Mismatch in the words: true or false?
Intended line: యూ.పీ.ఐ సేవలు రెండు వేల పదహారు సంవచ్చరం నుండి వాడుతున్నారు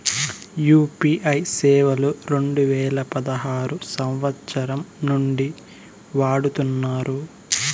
false